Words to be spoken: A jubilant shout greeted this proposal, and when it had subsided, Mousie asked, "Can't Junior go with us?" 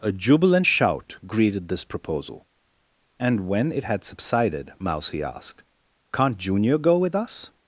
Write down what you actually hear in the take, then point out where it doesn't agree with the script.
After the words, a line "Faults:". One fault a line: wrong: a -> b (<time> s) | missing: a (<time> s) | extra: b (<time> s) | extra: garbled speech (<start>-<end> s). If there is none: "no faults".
A jubilant shout greeted this proposal, and when it had subsided, Mousie asked, "Can't Junior go with us?"
Faults:
no faults